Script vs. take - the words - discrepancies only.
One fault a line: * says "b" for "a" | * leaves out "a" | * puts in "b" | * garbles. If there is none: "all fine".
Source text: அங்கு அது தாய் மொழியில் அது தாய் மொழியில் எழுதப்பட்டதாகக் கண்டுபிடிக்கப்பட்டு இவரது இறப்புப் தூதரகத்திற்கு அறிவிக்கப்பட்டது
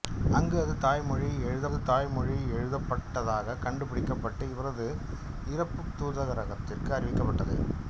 all fine